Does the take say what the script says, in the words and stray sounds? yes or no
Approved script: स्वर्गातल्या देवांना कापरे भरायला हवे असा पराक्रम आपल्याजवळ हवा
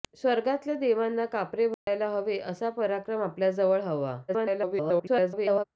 no